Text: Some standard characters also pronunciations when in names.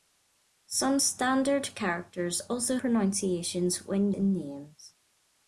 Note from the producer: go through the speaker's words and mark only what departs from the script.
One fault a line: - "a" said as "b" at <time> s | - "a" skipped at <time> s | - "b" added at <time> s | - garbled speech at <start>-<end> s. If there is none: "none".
none